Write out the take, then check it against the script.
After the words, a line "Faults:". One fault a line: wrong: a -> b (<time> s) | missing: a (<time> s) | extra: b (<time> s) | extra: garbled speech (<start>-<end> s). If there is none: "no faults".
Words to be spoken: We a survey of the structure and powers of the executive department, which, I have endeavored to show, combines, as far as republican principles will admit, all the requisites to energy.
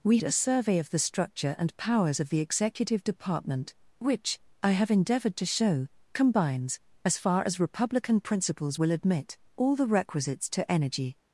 We a survey of the structure and powers of the executive department, which, I have endeavored to show, combines, as far as republican principles will admit, all the requisites to energy.
Faults:
no faults